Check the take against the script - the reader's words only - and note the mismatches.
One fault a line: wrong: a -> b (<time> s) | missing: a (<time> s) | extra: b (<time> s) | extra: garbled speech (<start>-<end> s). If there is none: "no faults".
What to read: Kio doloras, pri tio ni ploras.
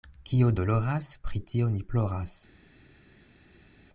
no faults